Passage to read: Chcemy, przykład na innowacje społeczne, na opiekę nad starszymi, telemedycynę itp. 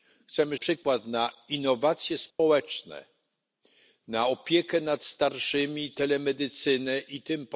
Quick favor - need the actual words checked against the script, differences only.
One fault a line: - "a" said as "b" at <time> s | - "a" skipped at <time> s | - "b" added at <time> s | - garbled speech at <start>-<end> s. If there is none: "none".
none